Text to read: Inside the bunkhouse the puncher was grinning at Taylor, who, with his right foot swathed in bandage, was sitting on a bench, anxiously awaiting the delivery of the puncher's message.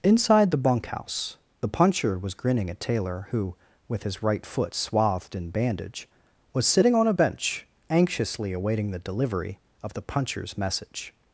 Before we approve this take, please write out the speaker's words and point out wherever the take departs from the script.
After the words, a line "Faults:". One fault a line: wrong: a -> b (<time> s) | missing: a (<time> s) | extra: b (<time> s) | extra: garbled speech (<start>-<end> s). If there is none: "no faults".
Inside the bunkhouse the puncher was grinning at Taylor, who, with his right foot swathed in bandage, was sitting on a bench, anxiously awaiting the delivery of the puncher's message.
Faults:
no faults